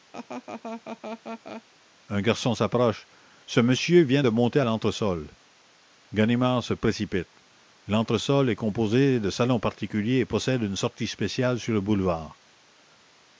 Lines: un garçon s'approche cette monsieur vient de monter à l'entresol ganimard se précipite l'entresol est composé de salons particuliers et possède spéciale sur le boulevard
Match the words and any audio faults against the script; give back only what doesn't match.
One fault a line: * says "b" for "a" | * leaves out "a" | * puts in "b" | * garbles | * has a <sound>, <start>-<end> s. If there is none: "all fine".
* has a laugh, 0.1-1.6 s
* says "ce" for "cette"
* puts in "une sortie"